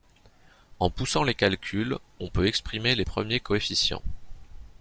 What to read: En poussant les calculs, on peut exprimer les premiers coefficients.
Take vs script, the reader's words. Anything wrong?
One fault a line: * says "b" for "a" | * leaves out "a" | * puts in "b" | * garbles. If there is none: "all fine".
all fine